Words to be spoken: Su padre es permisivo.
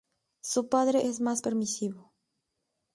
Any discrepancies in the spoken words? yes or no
yes